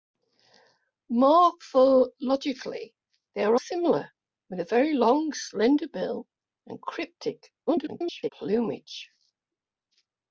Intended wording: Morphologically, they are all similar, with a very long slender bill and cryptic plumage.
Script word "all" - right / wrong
wrong